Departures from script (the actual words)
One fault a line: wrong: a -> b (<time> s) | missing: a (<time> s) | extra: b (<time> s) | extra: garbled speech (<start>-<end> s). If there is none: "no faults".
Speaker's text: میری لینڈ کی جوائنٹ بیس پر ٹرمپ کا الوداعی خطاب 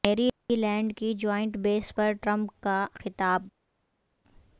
missing: الوداعی (2.8 s)